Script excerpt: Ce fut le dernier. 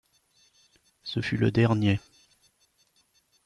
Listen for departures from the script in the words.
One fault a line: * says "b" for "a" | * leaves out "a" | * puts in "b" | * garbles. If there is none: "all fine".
all fine